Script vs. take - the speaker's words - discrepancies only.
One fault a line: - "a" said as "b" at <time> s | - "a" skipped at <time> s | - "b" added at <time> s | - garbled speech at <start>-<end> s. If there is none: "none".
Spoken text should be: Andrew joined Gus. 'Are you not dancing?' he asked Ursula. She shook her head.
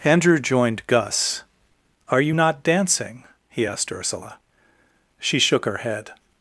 none